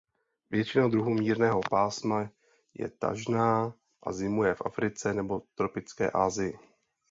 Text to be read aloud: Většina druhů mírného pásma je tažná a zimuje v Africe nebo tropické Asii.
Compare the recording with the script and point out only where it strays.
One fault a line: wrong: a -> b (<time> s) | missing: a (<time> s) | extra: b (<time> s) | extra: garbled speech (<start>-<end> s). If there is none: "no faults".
no faults